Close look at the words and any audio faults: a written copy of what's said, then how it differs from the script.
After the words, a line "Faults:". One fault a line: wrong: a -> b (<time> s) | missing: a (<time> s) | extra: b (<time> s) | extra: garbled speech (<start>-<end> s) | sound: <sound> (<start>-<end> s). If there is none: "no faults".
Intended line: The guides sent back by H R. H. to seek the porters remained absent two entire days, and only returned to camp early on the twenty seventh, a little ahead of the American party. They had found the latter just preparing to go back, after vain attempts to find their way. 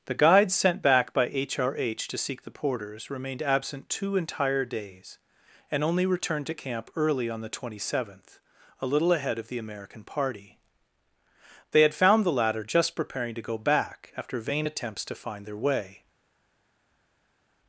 The guides sent back by H R. H. to seek the porters remained absent two entire days, and only returned to camp early on the twenty seventh, a little ahead of the American party. They had found the latter just preparing to go back, after vain attempts to find their way.
Faults:
no faults